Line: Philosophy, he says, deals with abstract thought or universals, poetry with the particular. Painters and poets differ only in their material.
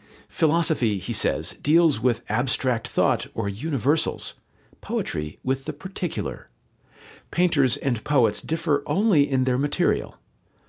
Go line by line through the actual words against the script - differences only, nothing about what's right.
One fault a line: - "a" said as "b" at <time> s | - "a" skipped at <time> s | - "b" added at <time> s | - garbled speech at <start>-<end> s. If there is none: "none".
none